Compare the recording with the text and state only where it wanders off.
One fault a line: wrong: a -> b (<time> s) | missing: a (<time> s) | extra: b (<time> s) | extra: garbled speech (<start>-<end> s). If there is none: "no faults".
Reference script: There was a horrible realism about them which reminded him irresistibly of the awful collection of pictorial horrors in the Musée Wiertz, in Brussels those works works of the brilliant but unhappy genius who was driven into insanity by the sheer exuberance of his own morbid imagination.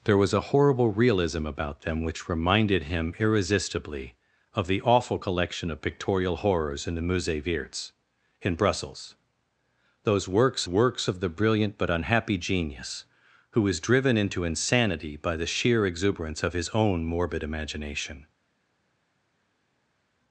no faults